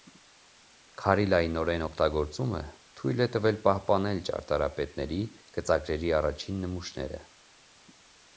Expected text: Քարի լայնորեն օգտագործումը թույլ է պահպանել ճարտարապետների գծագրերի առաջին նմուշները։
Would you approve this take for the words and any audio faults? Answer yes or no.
no